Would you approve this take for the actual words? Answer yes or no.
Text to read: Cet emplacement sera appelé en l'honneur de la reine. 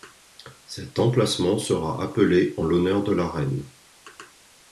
yes